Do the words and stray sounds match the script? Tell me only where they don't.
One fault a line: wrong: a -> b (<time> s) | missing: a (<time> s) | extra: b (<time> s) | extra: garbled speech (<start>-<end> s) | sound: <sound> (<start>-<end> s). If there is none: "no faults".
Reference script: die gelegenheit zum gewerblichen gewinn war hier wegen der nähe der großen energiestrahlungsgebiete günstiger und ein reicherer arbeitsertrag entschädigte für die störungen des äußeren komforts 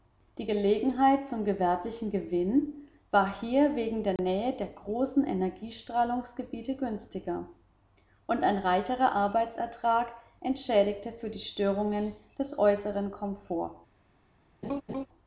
sound: dropout (4.2-4.2 s)
sound: laugh (14.6-15.1 s)